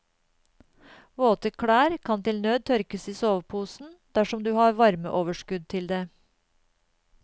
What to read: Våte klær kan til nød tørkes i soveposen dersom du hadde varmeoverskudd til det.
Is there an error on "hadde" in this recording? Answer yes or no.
yes